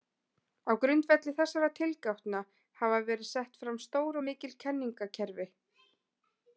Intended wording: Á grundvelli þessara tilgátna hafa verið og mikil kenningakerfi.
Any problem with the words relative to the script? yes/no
yes